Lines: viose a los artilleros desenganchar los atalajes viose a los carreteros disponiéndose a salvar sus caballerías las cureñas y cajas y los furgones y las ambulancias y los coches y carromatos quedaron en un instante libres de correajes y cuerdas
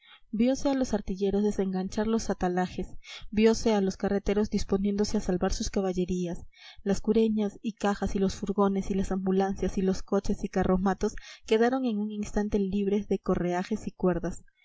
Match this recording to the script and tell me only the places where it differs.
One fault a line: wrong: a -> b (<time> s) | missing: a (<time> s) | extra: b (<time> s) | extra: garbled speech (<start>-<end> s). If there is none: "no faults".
no faults